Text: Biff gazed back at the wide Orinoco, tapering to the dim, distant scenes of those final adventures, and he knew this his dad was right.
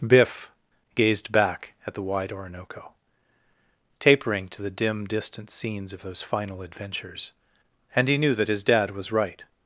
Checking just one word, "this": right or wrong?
wrong